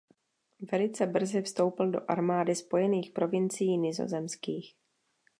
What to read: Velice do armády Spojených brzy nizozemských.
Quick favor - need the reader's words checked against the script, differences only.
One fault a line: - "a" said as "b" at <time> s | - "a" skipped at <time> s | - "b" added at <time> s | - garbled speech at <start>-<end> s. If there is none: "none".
- "brzy vstoupil" added at 1.1 s
- "brzy" said as "provincií" at 3.1 s